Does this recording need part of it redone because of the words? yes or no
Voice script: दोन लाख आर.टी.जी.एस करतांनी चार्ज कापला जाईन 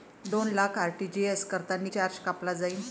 no